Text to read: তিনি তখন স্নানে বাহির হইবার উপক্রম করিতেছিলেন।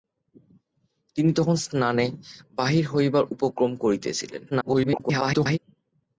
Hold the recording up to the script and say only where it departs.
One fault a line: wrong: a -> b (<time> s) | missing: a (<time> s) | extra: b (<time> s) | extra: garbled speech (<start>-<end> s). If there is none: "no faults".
extra: garbled speech (4.5-5.6 s)